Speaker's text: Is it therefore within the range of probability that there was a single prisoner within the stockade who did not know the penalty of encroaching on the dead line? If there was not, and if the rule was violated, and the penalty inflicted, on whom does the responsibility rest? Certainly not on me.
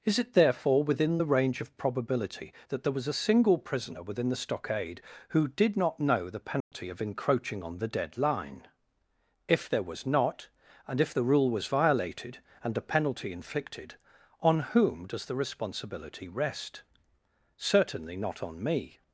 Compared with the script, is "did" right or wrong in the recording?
right